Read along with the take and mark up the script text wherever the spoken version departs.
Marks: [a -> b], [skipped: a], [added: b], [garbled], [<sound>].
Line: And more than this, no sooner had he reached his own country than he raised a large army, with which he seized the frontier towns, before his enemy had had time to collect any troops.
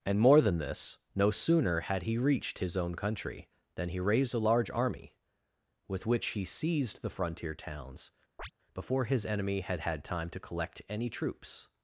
And more than this, no sooner had he reached his own country than he raised a large army, with which he seized the frontier towns, [chirp] before his enemy had had time to collect any troops.